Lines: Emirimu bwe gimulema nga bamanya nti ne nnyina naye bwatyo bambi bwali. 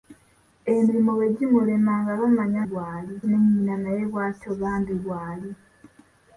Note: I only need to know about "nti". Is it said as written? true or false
false